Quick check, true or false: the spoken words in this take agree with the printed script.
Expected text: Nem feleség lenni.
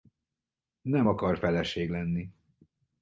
false